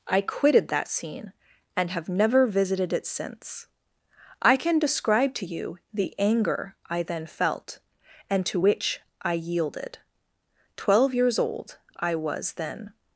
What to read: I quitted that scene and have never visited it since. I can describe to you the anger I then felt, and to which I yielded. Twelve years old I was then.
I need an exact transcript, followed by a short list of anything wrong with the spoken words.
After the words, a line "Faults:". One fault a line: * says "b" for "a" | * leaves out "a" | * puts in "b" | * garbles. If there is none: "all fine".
I quitted that scene and have never visited it since. I can describe to you the anger I then felt, and to which I yielded. Twelve years old I was then.
Faults:
all fine